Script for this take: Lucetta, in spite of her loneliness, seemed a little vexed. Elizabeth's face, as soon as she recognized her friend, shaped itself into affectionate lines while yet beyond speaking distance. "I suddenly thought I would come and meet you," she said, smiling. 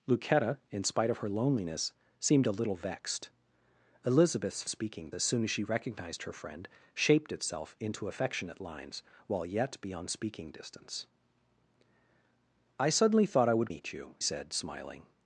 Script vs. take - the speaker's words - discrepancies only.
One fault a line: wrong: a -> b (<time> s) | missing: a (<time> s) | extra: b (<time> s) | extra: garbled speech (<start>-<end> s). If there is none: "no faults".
wrong: face -> speaking (4.7 s)
missing: come and (13.7 s)
missing: she (14.2 s)